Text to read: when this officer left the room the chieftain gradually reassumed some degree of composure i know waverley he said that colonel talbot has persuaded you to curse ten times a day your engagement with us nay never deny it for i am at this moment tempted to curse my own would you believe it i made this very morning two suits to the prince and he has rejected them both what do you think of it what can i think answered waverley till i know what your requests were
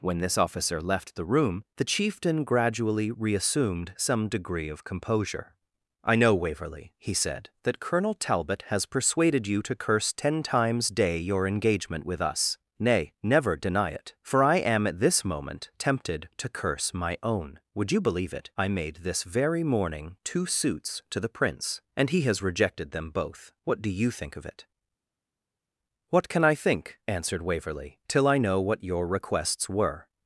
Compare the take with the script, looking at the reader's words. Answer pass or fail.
fail